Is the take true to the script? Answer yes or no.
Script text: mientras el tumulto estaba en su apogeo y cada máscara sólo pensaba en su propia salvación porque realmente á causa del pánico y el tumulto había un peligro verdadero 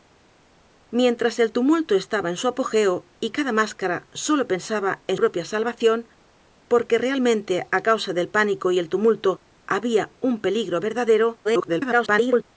no